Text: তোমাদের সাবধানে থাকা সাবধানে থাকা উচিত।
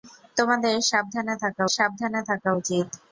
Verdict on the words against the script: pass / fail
pass